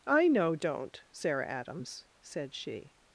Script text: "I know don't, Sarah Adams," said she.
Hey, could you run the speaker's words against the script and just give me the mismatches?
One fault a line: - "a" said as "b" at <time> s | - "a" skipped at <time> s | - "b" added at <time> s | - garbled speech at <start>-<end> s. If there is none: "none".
none